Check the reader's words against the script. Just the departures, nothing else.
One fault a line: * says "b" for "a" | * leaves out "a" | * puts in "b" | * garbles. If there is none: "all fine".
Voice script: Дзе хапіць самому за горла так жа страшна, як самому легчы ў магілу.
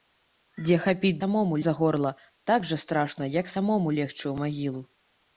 all fine